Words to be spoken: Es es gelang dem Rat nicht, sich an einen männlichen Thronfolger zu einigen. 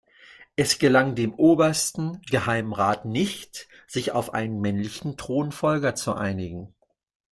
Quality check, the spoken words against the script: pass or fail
fail